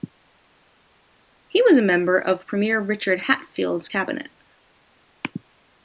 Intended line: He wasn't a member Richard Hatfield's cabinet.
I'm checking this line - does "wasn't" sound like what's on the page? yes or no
no